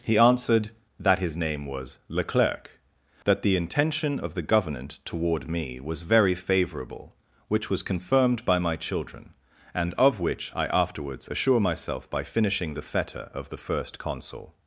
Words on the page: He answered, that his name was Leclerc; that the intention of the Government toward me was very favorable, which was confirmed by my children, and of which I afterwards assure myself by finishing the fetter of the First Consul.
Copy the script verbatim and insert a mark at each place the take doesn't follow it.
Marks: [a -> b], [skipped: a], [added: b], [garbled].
He answered, that his name was Leclerc; that the intention of the Government toward me was very favorable, which was confirmed by my children, and of which I afterwards assure myself by finishing the fetter of the First Consul.